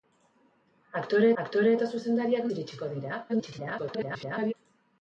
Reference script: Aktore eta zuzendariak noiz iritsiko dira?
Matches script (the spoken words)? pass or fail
fail